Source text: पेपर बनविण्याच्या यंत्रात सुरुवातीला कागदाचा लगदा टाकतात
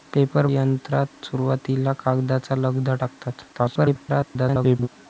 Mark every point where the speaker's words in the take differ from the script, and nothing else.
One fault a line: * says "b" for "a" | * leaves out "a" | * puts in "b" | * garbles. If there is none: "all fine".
* leaves out "बनविण्याच्या"
* garbles